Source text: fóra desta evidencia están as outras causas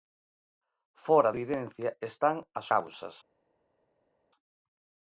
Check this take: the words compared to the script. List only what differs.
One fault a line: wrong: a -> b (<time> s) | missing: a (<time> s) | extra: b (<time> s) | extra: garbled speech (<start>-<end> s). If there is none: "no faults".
missing: desta (1.3 s)
missing: outras (2.7 s)